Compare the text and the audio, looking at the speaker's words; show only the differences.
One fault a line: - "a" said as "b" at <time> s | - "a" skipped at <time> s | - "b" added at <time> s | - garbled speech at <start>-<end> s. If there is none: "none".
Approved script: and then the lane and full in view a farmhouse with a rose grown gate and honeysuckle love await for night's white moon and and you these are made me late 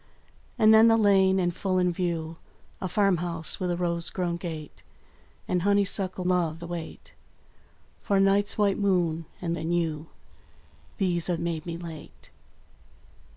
none